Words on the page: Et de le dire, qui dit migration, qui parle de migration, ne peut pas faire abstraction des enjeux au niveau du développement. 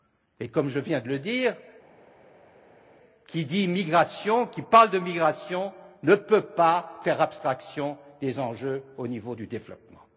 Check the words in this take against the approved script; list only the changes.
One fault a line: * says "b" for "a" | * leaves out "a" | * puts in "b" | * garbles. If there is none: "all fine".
* puts in "comme je viens"